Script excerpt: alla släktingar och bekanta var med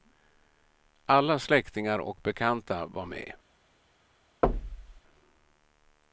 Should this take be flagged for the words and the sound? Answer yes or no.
yes